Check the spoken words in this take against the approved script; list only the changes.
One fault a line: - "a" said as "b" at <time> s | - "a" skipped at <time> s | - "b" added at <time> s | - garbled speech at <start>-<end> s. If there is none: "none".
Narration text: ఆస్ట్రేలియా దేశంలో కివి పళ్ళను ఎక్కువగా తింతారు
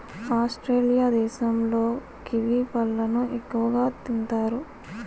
none